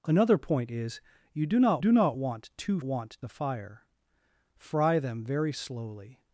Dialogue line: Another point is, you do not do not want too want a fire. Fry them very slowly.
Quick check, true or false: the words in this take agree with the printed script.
true